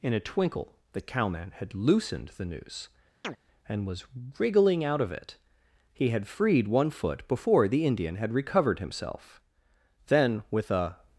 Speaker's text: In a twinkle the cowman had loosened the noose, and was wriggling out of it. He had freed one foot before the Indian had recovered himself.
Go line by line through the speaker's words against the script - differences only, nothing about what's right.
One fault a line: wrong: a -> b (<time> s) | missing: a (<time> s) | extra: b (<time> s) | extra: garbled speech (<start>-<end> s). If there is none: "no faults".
extra: Then with a (10.1 s)